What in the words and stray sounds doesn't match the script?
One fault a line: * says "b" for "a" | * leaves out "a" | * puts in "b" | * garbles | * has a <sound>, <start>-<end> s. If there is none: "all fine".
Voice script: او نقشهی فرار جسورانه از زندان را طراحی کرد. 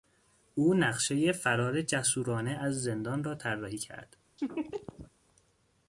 * has a laugh, 4.4-5.1 s